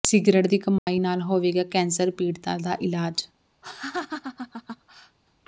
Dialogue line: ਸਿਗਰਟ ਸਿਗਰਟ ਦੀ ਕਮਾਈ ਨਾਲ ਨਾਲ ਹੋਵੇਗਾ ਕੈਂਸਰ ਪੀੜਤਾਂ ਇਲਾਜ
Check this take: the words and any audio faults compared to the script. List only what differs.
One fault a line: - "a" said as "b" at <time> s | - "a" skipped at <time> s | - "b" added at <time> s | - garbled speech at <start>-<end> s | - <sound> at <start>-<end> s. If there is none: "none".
- "ਸਿਗਰਟ" skipped at 0.5 s
- dropout at 0.8-0.9 s
- "ਨਾਲ" skipped at 1.2 s
- "ਦਾ" added at 2.6 s
- laugh at 3.6-5.2 s